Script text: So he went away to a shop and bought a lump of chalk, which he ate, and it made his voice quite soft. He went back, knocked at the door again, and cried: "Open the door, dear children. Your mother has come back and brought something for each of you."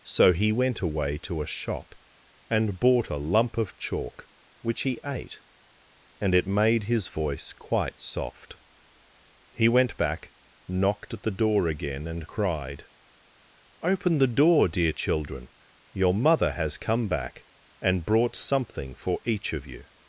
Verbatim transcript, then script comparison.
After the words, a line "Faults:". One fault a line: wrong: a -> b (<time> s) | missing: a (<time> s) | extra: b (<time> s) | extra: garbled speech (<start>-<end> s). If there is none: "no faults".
So he went away to a shop and bought a lump of chalk, which he ate, and it made his voice quite soft. He went back, knocked at the door again, and cried: "Open the door, dear children. Your mother has come back and brought something for each of you."
Faults:
no faults